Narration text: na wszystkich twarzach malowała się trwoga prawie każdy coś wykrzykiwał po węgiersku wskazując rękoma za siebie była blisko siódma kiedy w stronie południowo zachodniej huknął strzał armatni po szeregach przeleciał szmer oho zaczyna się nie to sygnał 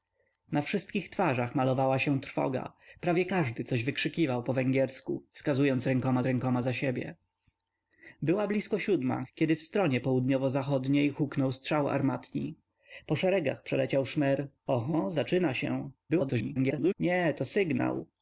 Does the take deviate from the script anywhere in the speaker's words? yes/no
yes